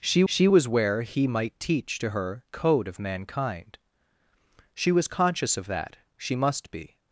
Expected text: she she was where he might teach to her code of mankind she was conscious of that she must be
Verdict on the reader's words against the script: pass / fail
pass